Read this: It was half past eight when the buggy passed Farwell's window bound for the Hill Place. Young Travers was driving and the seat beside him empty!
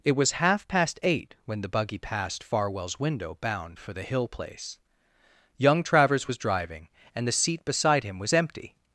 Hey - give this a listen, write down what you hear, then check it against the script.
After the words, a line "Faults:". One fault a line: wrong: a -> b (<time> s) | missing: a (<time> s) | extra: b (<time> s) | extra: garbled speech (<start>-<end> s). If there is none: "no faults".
It was half past eight when the buggy passed Farwell's window bound for the Hill Place. Young Travers was driving and the seat beside him was empty!
Faults:
extra: was (8.2 s)